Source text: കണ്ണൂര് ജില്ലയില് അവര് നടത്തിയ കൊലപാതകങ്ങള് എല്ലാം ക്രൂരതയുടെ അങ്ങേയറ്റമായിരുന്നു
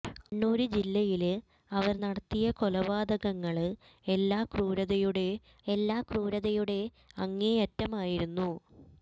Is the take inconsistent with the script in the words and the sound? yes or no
yes